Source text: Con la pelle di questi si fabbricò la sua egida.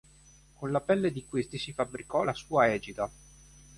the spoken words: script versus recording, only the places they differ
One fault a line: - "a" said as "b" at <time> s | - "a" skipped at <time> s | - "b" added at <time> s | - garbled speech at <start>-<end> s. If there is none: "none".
none